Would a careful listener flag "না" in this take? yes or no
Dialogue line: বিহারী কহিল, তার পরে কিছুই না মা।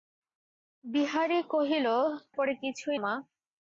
yes